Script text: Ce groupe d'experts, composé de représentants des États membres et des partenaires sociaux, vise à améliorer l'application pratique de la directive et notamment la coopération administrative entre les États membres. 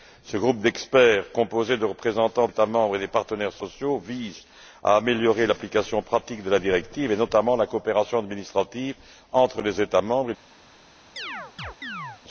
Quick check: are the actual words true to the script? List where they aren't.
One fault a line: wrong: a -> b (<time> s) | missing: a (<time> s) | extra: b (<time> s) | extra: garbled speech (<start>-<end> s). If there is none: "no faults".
missing: des (2.5 s)